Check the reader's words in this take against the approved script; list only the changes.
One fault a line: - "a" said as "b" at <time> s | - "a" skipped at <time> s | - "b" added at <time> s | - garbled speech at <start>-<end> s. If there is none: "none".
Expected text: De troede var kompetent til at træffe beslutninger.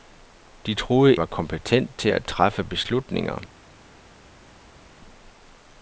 none